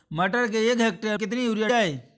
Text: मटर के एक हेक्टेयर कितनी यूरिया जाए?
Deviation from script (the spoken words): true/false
false